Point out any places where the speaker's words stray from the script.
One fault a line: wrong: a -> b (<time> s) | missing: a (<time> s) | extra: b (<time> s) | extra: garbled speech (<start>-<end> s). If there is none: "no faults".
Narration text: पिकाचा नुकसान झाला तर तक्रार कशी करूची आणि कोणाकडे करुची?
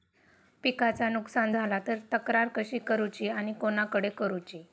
no faults